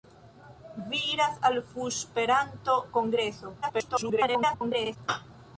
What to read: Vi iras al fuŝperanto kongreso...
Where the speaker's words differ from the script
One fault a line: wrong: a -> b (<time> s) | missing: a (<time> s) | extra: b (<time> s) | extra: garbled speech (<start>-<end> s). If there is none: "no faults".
extra: garbled speech (3.6-5.0 s)